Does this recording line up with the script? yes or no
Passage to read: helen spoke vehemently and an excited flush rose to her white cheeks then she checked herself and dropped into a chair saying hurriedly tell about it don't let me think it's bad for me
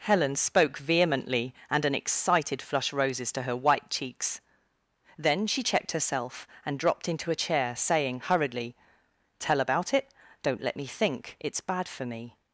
no